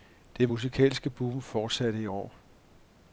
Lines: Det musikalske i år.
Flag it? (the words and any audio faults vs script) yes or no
yes